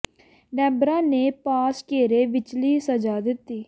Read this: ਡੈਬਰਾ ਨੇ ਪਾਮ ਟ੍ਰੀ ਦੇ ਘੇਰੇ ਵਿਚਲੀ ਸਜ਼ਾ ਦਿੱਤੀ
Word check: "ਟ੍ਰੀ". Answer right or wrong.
wrong